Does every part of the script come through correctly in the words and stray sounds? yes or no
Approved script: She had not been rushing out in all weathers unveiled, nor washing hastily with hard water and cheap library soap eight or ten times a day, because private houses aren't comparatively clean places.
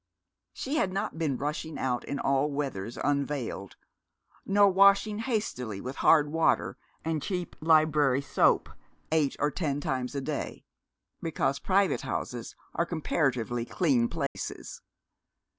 no